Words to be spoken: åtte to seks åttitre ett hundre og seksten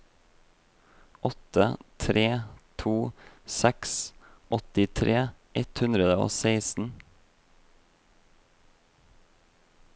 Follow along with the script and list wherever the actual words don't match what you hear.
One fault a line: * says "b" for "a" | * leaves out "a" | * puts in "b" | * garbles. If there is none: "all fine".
* puts in "tre"